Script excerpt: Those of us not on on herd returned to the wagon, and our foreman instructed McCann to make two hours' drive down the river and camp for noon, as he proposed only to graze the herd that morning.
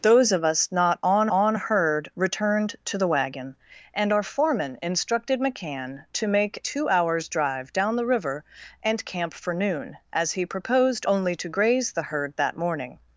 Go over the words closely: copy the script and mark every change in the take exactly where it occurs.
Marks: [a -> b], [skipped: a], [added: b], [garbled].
Those of us not on on herd returned to the wagon, and our foreman instructed McCann to make two hours' drive down the river and camp for noon, as he proposed only to graze the herd that morning.